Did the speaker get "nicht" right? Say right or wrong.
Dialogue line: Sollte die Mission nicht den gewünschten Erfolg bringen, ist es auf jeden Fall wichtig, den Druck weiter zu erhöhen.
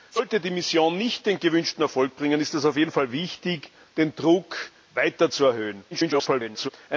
right